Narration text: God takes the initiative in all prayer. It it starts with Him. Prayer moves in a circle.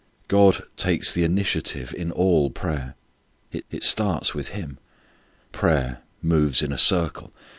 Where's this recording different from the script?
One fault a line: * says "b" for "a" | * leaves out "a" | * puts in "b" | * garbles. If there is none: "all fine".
all fine